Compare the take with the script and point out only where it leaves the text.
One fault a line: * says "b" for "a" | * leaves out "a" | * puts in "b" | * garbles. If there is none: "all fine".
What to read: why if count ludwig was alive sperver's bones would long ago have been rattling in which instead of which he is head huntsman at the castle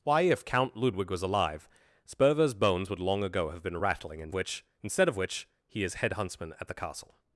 all fine